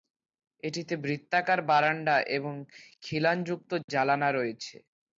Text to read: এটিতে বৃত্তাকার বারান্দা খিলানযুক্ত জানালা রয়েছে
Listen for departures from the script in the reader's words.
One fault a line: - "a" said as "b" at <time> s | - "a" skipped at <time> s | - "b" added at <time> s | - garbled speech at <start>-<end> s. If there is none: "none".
- "এবং" added at 2.4 s